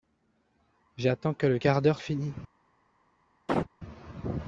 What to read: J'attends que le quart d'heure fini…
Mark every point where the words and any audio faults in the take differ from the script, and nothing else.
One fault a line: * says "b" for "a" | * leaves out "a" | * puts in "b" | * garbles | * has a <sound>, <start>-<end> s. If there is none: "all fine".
* has a chirp, 3.5-3.7 s